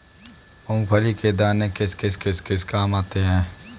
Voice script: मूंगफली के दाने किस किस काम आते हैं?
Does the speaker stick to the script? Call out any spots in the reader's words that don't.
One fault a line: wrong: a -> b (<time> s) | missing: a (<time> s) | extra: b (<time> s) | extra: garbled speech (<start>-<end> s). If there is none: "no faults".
extra: किस किस (2.1 s)